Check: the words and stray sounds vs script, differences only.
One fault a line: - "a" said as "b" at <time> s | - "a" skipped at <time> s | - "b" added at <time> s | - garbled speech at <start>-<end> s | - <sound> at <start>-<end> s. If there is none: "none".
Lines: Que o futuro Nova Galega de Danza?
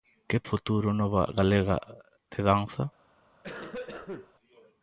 - cough at 3.4-4.3 s